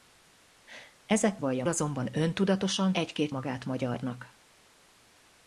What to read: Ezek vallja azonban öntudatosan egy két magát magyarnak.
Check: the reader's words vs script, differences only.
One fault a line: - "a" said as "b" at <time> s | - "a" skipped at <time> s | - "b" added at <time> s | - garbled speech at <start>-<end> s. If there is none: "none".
none